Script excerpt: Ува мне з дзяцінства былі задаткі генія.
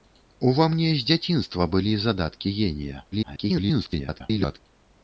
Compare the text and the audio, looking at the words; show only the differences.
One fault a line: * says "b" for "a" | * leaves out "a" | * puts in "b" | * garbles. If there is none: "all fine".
* garbles